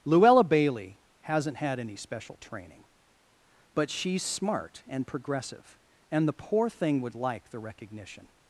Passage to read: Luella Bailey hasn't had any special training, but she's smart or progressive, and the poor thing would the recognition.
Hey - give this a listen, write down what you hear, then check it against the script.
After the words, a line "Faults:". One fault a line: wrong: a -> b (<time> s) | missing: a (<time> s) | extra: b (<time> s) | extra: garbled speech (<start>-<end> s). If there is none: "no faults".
Luella Bailey hasn't had any special training, but she's smart and progressive, and the poor thing would like the recognition.
Faults:
wrong: or -> and (4.9 s)
extra: like (7.2 s)